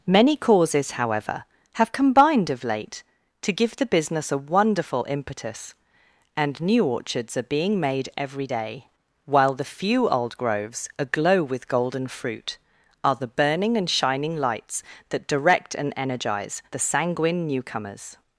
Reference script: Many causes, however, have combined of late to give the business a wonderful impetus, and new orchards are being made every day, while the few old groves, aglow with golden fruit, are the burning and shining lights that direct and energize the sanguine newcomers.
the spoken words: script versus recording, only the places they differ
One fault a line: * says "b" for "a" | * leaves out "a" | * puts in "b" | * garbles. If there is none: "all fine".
all fine